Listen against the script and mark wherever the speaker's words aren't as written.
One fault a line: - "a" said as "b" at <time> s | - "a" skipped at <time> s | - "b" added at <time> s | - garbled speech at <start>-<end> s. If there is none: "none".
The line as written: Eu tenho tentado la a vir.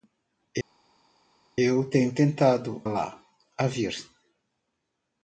none